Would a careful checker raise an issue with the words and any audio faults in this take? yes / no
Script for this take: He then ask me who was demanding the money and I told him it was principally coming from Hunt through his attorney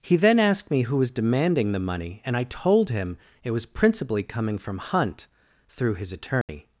yes